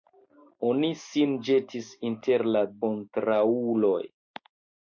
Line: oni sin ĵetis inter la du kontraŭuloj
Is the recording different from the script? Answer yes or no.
yes